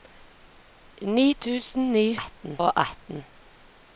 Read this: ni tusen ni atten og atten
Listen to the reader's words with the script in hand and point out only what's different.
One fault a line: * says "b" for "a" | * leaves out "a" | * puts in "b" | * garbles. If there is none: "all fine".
all fine